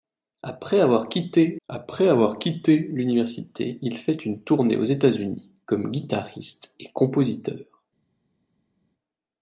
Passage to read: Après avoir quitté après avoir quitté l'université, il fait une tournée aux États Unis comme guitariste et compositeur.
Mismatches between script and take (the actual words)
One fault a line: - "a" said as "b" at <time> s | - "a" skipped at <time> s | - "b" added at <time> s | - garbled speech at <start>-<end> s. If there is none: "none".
none